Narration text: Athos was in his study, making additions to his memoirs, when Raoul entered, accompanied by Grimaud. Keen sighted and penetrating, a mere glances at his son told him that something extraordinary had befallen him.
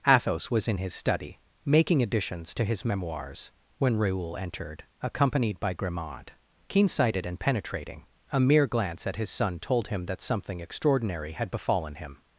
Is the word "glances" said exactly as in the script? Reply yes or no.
no